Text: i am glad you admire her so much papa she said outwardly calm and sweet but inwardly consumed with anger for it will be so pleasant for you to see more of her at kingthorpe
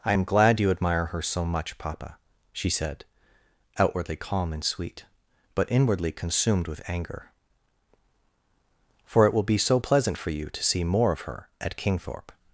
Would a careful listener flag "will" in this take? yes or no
no